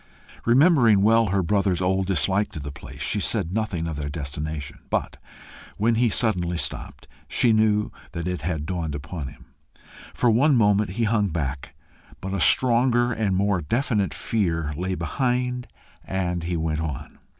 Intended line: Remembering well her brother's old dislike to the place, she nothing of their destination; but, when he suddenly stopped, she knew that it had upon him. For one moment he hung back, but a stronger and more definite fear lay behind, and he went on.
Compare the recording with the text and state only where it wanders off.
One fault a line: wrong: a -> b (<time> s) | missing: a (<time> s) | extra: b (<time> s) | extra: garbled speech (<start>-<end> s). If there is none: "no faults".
extra: said (3.2 s)
extra: dawned (8.7 s)